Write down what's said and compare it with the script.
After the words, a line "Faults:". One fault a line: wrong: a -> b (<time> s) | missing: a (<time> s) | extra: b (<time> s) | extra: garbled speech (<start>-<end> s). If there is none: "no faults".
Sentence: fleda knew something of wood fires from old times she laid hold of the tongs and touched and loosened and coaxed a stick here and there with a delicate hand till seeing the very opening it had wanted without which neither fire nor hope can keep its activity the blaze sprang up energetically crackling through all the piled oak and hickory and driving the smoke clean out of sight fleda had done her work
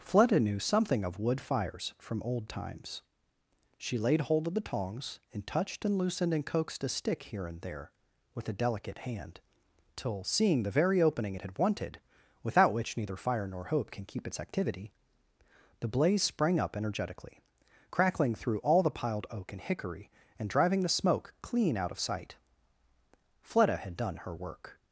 fleda knew something of wood fires from old times she laid hold of the tongs and touched and loosened and coaxed a stick here and there with a delicate hand till seeing the very opening it had wanted without which neither fire nor hope can keep its activity the blaze sprang up energetically crackling through all the piled oak and hickory and driving the smoke clean out of sight fleda had done her work
Faults:
no faults